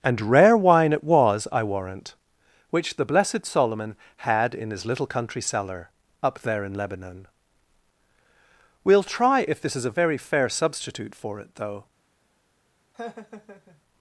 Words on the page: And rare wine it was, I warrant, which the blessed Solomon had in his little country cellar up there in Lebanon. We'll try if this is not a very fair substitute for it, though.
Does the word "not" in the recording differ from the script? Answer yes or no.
yes